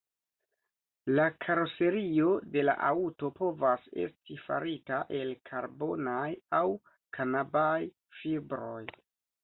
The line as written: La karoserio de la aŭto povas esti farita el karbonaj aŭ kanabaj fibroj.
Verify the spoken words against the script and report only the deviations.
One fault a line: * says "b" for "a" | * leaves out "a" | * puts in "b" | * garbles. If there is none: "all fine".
all fine